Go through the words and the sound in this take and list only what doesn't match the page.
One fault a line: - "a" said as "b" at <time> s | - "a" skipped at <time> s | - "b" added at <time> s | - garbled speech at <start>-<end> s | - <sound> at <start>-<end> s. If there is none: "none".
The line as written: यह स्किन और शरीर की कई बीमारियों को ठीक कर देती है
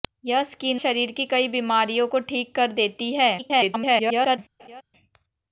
- "और" skipped at 0.8 s
- garbled speech at 3.4-4.4 s
- laugh at 4.6-4.8 s